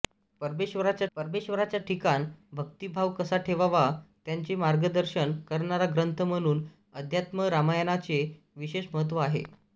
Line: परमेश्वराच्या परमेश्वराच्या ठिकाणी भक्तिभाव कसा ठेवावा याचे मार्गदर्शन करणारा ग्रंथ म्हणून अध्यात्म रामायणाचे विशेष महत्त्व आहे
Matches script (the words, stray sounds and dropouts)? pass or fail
pass